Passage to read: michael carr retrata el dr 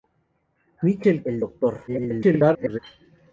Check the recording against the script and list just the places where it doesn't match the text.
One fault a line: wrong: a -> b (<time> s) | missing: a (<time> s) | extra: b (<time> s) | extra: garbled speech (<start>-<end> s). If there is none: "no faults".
missing: carr retrata (1.2 s)
extra: garbled speech (1.9-2.8 s)